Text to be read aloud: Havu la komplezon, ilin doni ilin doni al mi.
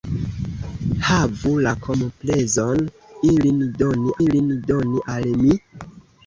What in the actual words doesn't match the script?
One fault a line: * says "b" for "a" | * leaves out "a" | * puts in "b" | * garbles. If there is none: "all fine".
all fine